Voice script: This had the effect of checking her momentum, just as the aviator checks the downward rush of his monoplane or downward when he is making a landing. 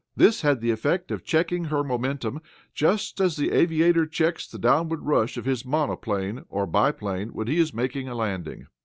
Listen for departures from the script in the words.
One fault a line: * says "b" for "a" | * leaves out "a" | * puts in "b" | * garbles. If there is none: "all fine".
* says "biplane" for "downward"